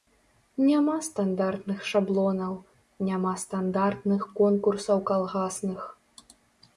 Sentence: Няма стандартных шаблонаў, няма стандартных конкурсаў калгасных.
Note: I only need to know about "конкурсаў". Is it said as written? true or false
true